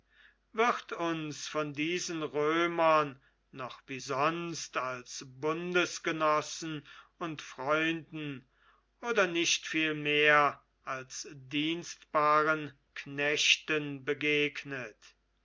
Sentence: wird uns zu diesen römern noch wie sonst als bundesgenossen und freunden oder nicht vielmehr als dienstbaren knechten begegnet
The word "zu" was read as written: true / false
false